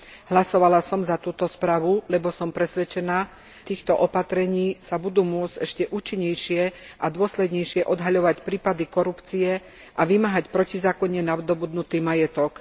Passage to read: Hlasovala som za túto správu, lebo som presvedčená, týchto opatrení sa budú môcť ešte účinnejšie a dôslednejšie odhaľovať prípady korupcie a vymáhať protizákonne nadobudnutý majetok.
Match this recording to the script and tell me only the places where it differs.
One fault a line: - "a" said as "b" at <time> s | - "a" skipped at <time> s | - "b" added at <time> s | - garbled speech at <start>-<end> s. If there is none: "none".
none